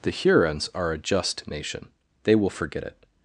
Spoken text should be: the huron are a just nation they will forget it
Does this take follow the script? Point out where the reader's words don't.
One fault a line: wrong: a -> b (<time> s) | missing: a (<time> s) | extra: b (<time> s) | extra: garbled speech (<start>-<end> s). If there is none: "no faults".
wrong: huron -> hurons (0.1 s)